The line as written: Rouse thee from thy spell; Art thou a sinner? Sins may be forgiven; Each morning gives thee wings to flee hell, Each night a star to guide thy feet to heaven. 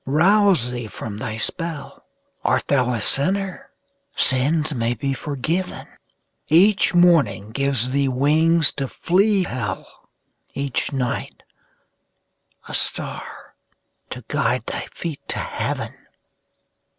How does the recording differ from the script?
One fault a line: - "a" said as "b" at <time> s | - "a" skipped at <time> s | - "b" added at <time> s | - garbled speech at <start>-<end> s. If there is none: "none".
none